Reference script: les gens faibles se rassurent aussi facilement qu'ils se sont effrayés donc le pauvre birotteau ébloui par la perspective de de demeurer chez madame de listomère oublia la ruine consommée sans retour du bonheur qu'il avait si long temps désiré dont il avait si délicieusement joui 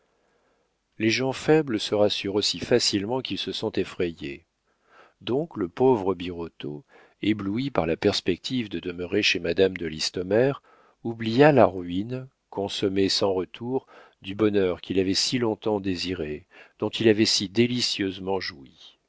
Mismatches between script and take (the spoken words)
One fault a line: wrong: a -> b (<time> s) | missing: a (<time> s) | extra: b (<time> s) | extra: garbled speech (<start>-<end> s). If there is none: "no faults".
missing: de (8.8 s)